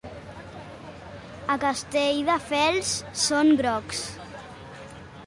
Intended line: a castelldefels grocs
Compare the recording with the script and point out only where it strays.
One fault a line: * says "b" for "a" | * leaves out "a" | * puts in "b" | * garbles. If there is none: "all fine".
* puts in "són"